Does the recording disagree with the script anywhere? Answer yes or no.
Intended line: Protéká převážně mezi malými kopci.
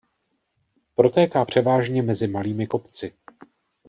no